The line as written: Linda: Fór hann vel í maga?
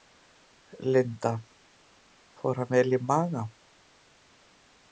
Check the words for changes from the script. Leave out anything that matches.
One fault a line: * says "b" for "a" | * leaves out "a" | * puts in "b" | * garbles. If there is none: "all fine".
all fine